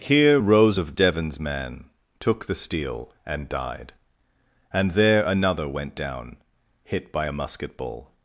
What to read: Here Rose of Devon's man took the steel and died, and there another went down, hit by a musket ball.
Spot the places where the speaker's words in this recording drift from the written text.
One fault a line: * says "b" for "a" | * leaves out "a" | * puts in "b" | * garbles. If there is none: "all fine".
all fine